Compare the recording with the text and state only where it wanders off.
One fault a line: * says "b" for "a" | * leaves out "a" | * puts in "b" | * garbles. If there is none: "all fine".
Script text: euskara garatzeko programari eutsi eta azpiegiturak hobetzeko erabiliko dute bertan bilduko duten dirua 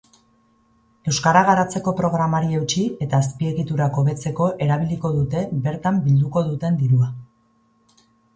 all fine